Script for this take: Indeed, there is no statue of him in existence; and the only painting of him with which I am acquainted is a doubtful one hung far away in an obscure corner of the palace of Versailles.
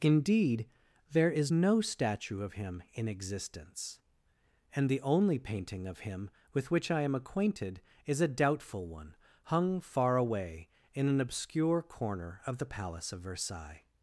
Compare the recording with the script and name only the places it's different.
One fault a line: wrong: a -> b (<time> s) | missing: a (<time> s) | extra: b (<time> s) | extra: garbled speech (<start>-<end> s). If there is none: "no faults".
no faults